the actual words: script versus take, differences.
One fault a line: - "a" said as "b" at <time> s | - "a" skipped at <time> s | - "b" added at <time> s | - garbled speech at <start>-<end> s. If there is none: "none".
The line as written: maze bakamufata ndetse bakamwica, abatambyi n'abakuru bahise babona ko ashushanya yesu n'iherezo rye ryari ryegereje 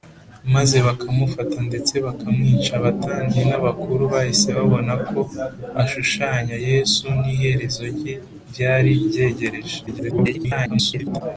- garbled speech at 9.9-11.2 s